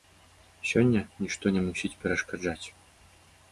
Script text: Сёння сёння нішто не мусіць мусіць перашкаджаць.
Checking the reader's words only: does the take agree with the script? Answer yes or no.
no